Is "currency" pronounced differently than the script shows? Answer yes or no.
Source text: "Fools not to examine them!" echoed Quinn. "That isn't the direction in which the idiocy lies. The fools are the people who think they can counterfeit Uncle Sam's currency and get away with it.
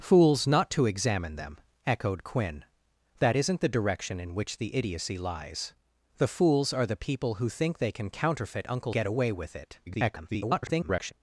yes